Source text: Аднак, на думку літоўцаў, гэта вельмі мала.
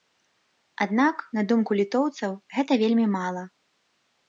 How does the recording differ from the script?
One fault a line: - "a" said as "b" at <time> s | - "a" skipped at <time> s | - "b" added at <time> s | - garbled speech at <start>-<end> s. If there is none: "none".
none